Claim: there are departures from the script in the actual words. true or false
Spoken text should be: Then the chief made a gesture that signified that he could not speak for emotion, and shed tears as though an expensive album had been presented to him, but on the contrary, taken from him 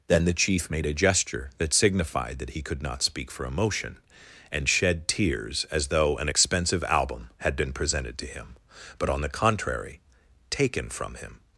false